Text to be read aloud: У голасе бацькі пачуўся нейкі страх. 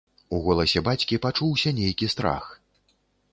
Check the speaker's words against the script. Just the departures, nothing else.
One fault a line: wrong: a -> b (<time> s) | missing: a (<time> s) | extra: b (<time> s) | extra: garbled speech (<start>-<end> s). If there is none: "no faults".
no faults